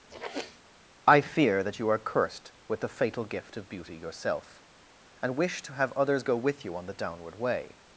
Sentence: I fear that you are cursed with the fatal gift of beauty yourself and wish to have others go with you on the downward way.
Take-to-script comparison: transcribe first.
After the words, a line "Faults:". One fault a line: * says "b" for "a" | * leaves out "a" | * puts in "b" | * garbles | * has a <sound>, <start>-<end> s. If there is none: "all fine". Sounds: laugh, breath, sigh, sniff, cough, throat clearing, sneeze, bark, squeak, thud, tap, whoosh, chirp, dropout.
I fear that you are cursed with the fatal gift of beauty yourself and wish to have others go with you on the downward way.
Faults:
* has a sniff, 0.1-0.6 s